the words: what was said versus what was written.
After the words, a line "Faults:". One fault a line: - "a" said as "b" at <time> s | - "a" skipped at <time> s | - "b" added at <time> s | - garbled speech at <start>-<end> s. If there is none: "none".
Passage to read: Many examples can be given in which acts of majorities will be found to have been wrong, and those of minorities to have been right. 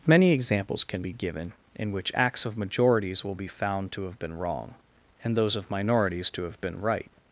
Many examples can be given in which acts of majorities will be found to have been wrong, and those of minorities to have been right.
Faults:
none